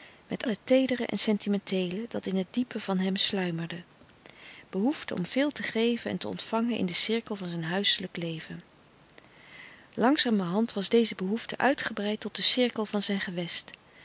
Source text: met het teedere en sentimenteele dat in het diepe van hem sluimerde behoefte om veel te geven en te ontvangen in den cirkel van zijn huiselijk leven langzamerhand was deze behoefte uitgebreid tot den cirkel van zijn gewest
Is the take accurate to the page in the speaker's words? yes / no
yes